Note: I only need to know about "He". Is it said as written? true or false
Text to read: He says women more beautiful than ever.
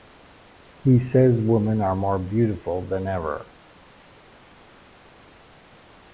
true